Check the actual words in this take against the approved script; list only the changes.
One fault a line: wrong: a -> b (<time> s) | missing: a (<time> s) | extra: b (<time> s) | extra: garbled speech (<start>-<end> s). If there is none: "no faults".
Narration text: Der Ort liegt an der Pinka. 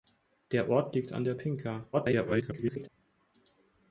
extra: garbled speech (1.9-2.9 s)